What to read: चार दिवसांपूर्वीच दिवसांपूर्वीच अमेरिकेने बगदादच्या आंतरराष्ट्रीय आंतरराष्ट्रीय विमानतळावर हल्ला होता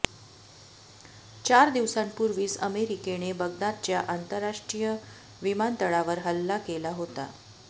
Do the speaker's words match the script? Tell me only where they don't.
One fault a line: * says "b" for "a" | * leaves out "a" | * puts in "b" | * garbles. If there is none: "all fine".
* leaves out "दिवसांपूर्वीच"
* leaves out "आंतरराष्ट्रीय"
* puts in "केला"